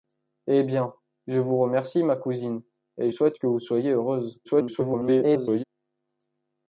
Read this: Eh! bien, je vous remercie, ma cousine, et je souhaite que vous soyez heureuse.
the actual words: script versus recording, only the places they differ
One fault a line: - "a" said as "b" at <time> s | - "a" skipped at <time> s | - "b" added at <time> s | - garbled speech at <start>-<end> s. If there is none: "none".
- "je" skipped at 3.1 s
- garbled speech at 4.4-5.6 s